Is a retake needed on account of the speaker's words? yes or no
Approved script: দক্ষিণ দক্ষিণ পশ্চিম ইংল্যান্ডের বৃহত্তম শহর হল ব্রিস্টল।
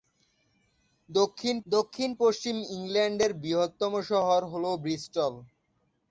no